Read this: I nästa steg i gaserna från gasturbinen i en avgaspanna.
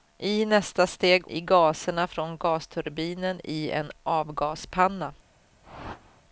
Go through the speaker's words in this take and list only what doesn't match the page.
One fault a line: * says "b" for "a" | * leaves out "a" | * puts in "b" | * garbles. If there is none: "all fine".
all fine